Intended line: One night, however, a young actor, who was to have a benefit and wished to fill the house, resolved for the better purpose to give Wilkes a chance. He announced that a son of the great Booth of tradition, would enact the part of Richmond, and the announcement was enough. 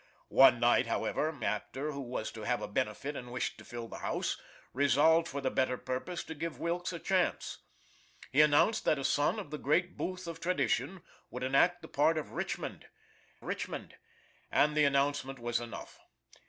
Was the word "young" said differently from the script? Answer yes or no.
yes